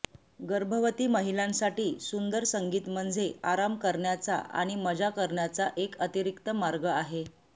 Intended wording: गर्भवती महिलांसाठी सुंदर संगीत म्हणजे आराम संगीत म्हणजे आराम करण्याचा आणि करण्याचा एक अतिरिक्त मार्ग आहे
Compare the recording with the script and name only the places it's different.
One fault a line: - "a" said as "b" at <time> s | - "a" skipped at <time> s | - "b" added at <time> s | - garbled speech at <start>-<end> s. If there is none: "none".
- "संगीत म्हणजे आराम" skipped at 3.8 s
- "मजा" added at 4.8 s